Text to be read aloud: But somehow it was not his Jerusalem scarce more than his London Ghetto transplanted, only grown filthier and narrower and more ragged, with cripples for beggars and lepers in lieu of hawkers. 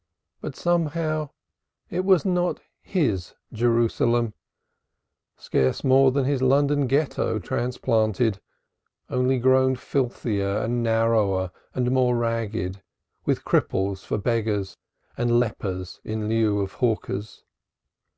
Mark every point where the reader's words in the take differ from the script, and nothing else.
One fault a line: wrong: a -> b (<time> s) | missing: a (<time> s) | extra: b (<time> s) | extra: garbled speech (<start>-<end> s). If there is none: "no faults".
no faults